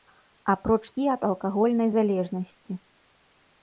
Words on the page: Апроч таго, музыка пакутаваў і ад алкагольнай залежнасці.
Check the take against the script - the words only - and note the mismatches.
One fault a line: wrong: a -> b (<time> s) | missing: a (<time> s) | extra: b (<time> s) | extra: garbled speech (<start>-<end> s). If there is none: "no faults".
missing: таго музыка пакутаваў (0.8 s)